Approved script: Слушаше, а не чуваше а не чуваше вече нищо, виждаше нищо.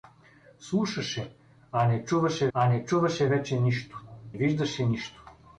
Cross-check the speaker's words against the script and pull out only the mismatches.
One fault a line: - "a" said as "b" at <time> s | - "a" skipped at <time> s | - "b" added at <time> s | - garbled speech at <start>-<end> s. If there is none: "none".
none